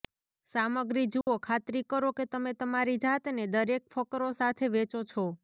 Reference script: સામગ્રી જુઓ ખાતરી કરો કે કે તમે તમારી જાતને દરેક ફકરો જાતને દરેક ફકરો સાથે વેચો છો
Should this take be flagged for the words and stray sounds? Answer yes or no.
yes